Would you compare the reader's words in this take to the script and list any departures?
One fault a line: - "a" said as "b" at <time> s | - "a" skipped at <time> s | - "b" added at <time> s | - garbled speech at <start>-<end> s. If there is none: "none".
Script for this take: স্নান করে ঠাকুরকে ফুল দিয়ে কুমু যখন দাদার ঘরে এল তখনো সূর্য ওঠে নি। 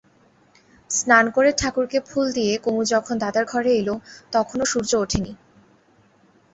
none